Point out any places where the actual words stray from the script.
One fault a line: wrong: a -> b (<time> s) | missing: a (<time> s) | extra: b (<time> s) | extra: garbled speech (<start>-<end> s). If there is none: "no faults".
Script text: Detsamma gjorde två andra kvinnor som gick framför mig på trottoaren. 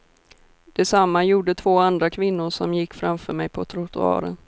no faults